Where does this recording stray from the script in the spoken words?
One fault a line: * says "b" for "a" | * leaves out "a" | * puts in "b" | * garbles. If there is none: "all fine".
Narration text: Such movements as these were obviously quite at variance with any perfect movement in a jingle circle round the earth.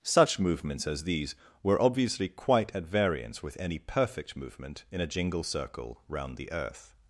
all fine